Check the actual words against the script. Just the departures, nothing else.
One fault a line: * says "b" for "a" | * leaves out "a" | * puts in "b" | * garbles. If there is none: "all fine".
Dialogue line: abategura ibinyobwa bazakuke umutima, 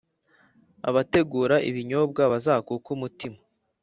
all fine